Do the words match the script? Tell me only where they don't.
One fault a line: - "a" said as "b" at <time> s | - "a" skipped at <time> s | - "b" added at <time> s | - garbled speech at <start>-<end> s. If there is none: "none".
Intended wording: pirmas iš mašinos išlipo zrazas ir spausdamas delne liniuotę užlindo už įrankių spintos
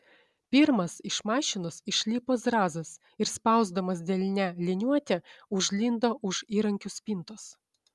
none